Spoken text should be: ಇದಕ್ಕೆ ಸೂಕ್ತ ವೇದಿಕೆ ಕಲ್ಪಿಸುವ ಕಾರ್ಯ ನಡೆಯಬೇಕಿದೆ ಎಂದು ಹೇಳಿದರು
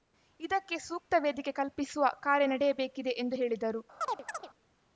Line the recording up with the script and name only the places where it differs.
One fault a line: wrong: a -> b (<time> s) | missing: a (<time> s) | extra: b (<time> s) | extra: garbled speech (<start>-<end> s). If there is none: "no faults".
no faults